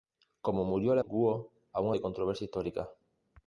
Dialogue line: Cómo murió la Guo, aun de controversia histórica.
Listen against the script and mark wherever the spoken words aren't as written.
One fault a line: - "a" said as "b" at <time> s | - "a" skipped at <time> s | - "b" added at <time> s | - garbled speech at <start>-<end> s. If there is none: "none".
none